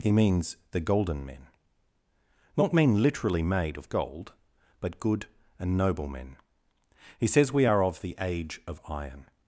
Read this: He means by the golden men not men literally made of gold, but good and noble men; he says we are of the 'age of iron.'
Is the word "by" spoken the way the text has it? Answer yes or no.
no